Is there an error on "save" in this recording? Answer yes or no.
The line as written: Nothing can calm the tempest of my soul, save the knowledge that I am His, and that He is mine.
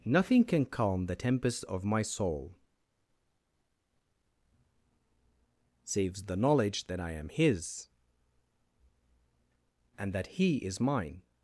yes